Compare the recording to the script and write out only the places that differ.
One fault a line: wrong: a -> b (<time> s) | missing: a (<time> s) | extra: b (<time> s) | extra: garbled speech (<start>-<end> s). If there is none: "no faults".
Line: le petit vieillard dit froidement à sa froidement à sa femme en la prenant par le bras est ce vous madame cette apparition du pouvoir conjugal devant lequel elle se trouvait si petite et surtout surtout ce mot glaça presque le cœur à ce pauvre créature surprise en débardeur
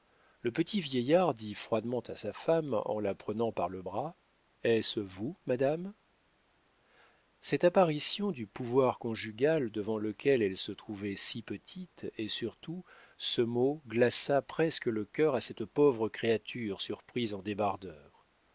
missing: froidement à sa (2.3 s)
missing: surtout (12.8 s)
wrong: ce -> cette (15.4 s)